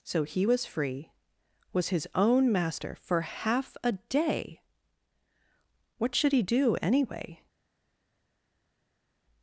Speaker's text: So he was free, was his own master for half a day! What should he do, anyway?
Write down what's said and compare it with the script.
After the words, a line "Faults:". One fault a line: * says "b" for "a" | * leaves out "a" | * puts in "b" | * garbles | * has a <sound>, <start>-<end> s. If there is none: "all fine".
So he was free, was his own master for half a day! What should he do, anyway?
Faults:
all fine